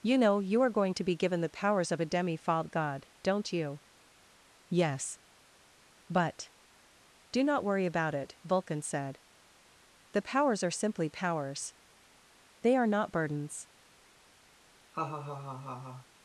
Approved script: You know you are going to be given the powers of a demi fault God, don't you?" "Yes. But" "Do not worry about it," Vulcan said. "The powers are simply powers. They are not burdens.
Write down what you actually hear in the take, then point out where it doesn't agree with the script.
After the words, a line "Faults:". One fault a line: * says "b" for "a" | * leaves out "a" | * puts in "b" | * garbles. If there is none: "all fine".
You know you are going to be given the powers of a demi fault God, don't you?" "Yes. But" "Do not worry about it," Vulcan said. "The powers are simply powers. They are not burdens.
Faults:
all fine